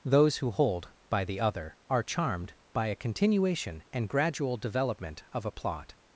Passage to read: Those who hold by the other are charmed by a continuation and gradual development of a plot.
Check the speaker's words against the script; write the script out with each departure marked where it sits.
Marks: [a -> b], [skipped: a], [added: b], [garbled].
Those who hold by the other are charmed by a continuation and gradual development of a plot.